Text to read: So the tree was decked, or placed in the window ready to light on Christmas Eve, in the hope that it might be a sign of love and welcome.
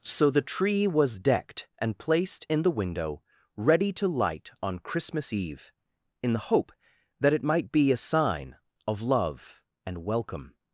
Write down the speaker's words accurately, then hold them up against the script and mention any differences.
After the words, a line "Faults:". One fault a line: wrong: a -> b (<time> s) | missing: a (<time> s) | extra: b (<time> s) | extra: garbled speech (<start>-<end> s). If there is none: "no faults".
So the tree was decked, and placed in the window ready to light on Christmas Eve, in the hope that it might be a sign of love and welcome.
Faults:
wrong: or -> and (1.8 s)